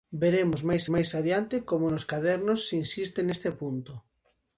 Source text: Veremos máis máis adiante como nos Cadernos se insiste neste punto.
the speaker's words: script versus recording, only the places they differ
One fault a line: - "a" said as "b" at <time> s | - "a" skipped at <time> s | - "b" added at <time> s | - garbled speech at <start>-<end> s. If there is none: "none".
none